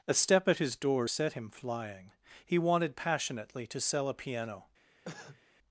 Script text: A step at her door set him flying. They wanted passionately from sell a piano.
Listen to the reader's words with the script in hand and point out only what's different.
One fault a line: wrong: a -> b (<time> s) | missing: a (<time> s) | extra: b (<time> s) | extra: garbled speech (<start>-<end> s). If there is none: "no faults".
wrong: her -> his (0.6 s)
wrong: They -> He (2.5 s)
wrong: from -> to (3.7 s)